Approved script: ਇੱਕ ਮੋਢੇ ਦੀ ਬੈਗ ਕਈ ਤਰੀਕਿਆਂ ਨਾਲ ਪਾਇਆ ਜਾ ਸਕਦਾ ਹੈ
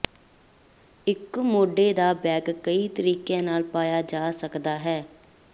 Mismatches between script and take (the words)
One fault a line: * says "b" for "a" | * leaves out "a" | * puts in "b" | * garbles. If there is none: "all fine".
* says "ਦਾ" for "ਦੀ"